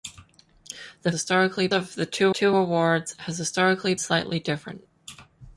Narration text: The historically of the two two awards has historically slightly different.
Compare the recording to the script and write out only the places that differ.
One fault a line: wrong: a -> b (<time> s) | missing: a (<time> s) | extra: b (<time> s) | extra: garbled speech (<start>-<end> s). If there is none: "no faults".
no faults